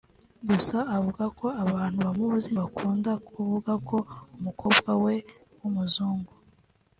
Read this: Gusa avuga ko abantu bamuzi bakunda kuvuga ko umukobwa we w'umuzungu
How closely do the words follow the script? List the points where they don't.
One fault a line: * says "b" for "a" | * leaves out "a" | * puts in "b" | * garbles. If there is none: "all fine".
all fine